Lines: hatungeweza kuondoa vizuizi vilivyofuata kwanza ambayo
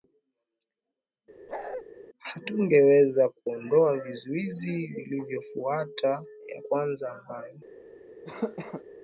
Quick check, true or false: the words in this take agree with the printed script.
false